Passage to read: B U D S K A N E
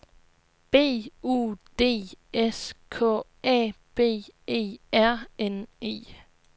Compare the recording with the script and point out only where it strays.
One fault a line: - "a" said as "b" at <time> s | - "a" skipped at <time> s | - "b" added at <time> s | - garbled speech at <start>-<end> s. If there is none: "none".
- "B E R" added at 3.9 s